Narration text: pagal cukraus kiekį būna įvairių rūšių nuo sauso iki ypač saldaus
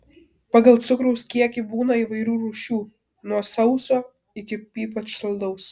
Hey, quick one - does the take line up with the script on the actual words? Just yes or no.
yes